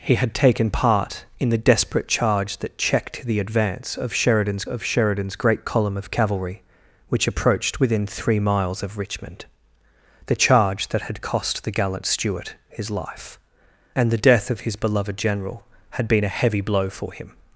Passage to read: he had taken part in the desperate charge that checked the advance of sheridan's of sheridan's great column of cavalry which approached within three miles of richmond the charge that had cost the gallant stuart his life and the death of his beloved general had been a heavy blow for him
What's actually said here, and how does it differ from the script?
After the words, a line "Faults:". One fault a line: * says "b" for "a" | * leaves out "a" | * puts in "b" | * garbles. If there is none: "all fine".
he had taken part in the desperate charge that checked the advance of sheridan's of sheridan's great column of cavalry which approached within three miles of richmond the charge that had cost the gallant stuart his life and the death of his beloved general had been a heavy blow for him
Faults:
all fine